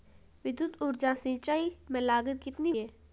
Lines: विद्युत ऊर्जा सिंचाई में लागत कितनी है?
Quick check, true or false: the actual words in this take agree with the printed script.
true